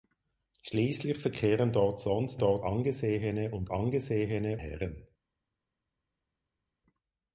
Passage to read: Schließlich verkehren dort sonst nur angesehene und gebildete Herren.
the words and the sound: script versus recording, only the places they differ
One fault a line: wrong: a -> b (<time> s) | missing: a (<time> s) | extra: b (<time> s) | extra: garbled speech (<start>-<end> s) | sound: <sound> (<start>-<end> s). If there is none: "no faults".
wrong: nur -> dort (2.4 s)
wrong: gebildete -> angesehene (3.7 s)